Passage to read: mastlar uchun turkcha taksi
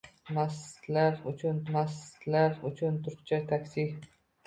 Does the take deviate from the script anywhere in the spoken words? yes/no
yes